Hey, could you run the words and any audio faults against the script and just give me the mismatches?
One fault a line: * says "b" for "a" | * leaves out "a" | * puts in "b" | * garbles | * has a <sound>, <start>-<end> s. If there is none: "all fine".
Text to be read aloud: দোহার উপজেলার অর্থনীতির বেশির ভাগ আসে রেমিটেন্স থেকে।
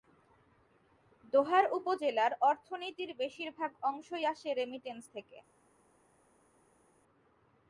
* puts in "অংশই"